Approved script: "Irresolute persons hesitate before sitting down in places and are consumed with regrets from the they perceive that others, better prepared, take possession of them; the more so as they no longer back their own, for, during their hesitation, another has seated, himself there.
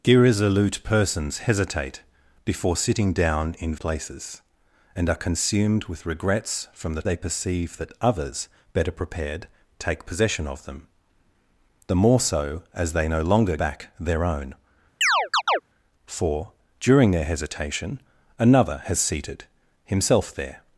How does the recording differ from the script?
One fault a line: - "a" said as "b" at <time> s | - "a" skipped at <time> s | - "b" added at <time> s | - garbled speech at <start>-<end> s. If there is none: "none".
none